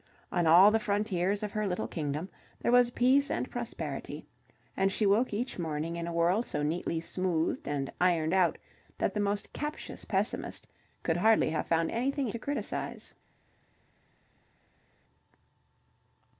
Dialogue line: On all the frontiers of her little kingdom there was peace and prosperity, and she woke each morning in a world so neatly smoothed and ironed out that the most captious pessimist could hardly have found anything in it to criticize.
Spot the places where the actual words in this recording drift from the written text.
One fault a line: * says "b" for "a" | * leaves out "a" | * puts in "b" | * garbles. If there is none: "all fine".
* leaves out "in it"